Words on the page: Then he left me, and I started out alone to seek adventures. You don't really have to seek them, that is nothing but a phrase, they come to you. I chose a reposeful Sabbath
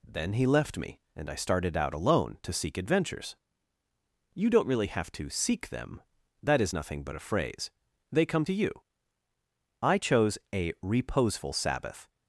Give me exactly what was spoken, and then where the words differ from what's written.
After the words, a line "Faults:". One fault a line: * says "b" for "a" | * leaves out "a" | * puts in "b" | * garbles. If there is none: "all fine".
Then he left me, and I started out alone to seek adventures. You don't really have to seek them, that is nothing but a phrase, they come to you. I chose a reposeful Sabbath
Faults:
all fine